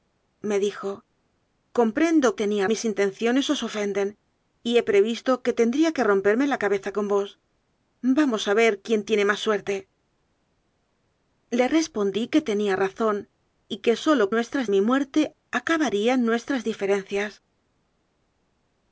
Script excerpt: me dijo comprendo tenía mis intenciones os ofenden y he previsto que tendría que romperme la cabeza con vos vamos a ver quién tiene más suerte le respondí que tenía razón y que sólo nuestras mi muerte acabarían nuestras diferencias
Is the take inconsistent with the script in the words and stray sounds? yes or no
no